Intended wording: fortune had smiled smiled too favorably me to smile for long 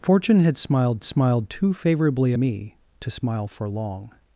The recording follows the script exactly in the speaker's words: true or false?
true